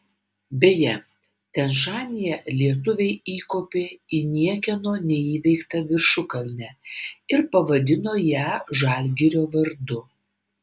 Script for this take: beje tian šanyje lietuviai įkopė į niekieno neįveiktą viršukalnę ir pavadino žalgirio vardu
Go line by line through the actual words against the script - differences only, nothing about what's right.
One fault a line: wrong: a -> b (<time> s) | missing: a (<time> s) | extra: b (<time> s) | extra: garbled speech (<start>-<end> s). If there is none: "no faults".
extra: ją (8.3 s)